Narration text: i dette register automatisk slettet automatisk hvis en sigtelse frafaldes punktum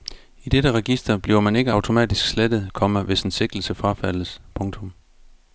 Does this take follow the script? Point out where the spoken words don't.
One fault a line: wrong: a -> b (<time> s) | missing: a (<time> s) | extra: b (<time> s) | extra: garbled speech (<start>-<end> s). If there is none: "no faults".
extra: bliver man ikke (1.2 s)
wrong: automatisk -> komma (2.7 s)